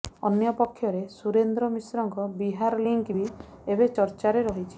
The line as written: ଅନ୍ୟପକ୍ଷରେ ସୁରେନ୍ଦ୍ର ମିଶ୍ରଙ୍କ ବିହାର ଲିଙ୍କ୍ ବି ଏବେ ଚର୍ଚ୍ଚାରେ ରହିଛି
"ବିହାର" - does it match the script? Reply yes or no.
yes